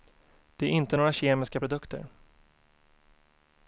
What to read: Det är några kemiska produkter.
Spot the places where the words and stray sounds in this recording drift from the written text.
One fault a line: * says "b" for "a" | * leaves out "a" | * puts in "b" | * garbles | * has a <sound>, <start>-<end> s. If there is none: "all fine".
* puts in "inte"